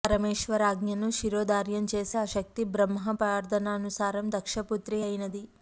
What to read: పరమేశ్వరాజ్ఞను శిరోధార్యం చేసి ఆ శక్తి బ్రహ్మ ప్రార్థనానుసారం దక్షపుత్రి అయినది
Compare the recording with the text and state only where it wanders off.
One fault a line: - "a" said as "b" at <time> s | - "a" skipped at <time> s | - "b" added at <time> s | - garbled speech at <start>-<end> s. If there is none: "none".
none